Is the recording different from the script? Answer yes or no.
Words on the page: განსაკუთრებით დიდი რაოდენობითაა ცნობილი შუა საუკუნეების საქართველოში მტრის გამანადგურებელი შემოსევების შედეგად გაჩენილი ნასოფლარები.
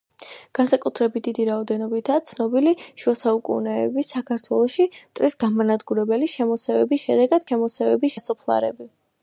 yes